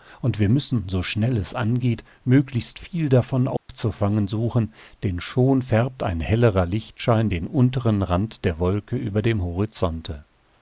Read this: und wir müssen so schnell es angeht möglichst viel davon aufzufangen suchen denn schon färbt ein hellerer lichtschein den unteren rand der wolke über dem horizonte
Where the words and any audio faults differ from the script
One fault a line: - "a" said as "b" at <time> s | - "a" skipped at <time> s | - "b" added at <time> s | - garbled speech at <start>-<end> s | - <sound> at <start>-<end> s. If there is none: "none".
- dropout at 3.6-3.7 s